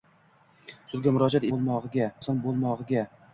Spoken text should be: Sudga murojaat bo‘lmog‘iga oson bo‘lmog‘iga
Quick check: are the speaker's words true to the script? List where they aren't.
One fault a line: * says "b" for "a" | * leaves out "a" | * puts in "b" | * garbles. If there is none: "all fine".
all fine